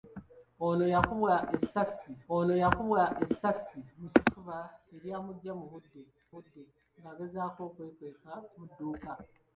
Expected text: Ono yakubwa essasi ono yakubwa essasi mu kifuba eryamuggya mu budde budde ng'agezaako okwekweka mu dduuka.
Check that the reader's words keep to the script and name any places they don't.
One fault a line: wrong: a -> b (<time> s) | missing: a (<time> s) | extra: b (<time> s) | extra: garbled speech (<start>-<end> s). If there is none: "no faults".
no faults